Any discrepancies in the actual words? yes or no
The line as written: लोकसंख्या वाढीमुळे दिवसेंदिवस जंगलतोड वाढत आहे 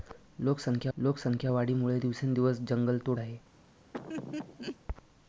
yes